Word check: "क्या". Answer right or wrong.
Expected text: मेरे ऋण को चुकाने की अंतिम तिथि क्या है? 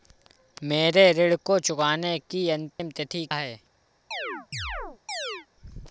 wrong